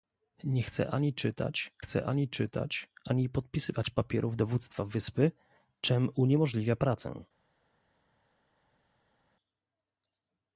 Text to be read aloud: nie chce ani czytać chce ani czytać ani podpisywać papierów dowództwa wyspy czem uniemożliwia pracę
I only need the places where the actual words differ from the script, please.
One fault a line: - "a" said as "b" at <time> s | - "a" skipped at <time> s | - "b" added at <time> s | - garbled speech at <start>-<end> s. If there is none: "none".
none